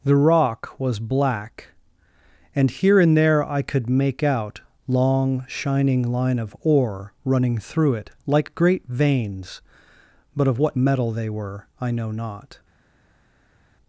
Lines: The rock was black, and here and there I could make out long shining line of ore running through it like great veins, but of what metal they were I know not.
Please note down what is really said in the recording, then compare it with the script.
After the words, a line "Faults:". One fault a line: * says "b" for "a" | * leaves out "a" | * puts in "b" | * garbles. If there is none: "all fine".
The rock was black, and here and there I could make out long shining line of ore running through it like great veins, but of what metal they were I know not.
Faults:
all fine